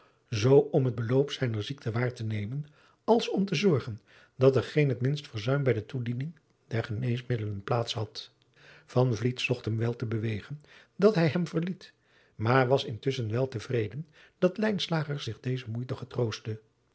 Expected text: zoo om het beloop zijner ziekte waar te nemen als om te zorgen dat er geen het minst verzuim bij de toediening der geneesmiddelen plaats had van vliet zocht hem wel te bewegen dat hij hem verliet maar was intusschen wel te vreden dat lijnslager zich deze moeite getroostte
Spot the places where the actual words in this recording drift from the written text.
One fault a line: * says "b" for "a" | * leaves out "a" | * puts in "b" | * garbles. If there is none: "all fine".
all fine